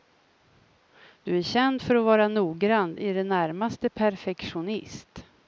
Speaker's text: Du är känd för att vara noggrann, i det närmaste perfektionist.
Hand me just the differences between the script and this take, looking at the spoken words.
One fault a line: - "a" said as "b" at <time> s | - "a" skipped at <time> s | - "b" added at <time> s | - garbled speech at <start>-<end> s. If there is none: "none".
none